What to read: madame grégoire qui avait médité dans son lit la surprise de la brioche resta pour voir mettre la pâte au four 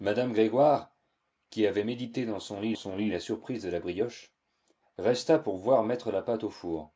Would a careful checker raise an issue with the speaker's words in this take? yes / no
yes